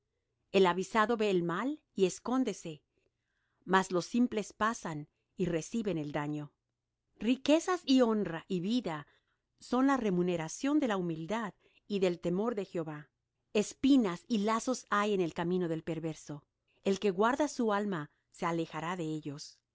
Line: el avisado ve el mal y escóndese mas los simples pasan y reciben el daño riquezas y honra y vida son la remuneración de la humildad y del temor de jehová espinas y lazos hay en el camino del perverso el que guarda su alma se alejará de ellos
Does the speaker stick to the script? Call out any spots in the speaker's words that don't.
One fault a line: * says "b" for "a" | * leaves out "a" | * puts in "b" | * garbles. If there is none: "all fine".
all fine